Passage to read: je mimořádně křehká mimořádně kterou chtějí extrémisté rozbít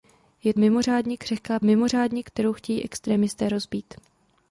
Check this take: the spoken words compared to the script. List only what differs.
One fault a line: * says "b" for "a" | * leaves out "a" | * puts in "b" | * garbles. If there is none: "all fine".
all fine